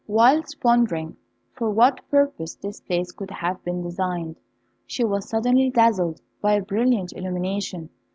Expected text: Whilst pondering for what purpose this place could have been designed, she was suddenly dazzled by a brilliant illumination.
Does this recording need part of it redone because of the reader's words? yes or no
no